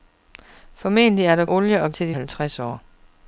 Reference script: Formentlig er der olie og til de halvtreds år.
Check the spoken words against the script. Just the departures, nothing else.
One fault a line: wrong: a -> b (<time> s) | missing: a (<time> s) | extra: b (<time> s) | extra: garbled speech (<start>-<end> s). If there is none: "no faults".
no faults